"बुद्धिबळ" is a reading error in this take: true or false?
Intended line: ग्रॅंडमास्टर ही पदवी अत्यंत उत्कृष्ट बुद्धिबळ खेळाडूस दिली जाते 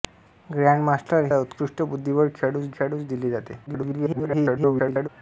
false